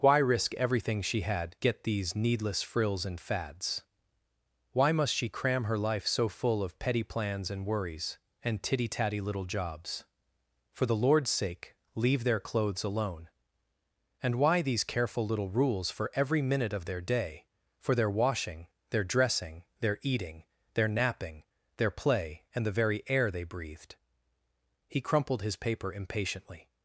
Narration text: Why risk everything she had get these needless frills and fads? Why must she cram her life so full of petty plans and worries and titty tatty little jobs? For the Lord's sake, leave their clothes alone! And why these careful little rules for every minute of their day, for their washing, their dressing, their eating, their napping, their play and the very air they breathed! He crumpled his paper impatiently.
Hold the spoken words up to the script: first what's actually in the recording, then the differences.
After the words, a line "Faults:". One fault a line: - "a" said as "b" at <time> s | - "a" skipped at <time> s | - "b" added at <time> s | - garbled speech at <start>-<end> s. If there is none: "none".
Why risk everything she had get these needless frills and fads? Why must she cram her life so full of petty plans and worries and titty tatty little jobs? For the Lord's sake, leave their clothes alone! And why these careful little rules for every minute of their day, for their washing, their dressing, their eating, their napping, their play and the very air they breathed! He crumpled his paper impatiently.
Faults:
none